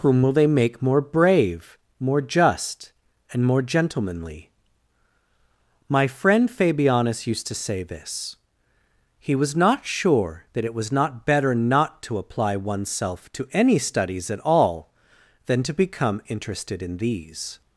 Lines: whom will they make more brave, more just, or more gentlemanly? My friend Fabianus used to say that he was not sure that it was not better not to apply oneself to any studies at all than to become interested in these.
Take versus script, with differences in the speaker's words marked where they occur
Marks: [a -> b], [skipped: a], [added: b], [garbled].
whom will they make more brave, more just, [or -> and] more gentlemanly? My friend Fabianus used to say [that -> this] he was not sure that it was not better not to apply oneself to any studies at all than to become interested in these.